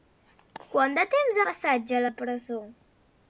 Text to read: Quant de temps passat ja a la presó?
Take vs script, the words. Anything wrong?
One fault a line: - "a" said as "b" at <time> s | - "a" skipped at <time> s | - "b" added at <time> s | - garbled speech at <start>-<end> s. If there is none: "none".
none